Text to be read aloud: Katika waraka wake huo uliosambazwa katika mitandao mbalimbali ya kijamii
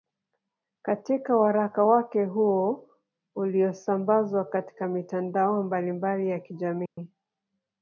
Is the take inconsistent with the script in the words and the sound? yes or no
yes